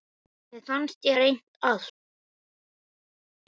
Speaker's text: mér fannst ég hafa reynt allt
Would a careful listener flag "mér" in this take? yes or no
no